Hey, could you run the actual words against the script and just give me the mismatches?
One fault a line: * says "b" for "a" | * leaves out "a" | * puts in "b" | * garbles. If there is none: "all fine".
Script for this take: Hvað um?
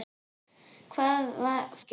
all fine